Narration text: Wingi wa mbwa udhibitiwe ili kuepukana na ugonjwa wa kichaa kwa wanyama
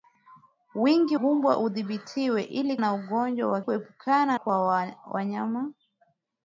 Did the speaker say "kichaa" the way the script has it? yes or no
no